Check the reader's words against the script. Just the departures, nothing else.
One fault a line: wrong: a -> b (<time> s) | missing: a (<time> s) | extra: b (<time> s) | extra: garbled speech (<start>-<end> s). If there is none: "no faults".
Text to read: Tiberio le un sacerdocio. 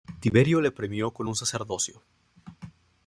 extra: premió con (0.7 s)